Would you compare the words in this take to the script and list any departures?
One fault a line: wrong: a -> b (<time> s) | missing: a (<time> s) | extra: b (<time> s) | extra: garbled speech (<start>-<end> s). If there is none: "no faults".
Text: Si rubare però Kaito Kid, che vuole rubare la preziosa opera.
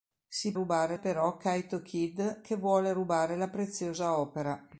no faults